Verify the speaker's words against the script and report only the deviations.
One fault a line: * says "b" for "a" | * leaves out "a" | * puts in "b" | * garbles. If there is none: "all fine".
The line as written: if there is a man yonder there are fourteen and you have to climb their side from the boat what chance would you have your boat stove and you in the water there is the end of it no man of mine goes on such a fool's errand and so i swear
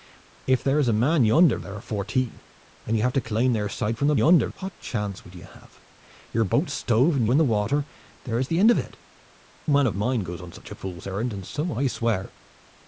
* says "yonder" for "boat"
* leaves out "you"
* leaves out "no"